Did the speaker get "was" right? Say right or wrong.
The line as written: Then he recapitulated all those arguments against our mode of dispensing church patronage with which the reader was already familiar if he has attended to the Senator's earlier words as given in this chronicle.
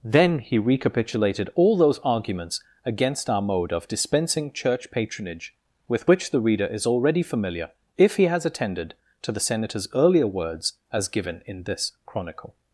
wrong